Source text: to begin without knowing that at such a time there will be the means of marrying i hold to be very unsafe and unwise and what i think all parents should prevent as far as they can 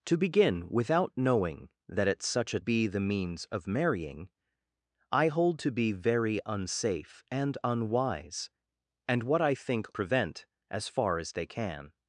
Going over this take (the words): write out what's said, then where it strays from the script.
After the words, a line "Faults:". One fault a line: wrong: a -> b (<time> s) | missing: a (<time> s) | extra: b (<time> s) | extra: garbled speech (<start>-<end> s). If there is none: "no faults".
to begin without knowing that at such a be the means of marrying i hold to be very unsafe and unwise and what i think prevent as far as they can
Faults:
missing: time there will (2.6 s)
missing: all parents should (9.9 s)